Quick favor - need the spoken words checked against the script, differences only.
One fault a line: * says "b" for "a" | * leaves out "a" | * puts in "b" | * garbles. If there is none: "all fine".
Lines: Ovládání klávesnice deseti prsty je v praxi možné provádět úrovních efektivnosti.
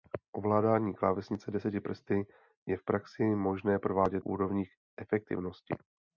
all fine